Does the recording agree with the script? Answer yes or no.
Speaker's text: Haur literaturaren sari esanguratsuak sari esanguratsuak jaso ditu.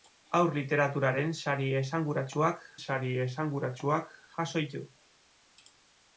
yes